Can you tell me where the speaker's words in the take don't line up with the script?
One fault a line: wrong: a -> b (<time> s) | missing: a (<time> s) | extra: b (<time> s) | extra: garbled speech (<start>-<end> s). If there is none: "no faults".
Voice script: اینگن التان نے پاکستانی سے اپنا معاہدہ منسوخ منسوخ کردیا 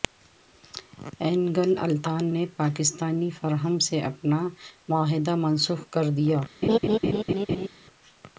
extra: فرم (3.4 s)
missing: منسوخ (5.8 s)